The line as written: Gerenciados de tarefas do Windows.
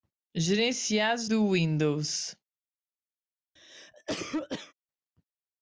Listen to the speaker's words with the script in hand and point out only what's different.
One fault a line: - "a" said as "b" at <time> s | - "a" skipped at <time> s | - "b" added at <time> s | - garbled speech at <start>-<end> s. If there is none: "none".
- "de tarefas" skipped at 1.3 s